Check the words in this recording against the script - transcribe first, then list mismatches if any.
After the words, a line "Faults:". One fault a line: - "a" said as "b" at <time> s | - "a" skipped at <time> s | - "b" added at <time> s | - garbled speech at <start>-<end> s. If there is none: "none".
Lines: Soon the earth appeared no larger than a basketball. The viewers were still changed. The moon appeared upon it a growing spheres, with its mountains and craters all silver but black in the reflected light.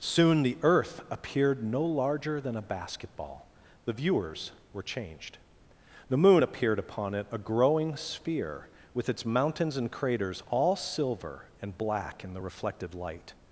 Soon the earth appeared no larger than a basketball. The viewers were changed. The moon appeared upon it a growing sphere, with its mountains and craters all silver and black in the reflected light.
Faults:
- "still" skipped at 4.8 s
- "spheres" said as "sphere" at 8.0 s
- "but" said as "and" at 11.6 s